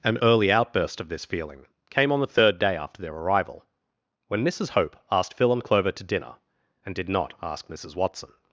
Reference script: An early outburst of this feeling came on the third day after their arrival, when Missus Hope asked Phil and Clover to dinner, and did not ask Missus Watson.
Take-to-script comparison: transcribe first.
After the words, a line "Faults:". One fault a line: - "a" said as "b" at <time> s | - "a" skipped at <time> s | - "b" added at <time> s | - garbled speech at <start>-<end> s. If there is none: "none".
An early outburst of this feeling came on the third day after their arrival, when Missus Hope asked Phil and Clover to dinner, and did not ask Missus Watson.
Faults:
none